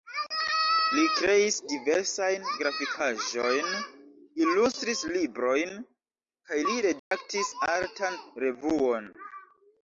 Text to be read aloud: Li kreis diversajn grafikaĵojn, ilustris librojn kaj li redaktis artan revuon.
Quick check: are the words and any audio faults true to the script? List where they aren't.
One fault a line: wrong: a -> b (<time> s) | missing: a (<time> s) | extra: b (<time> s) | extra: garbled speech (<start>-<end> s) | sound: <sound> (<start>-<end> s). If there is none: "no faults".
sound: dropout (7.0-7.1 s)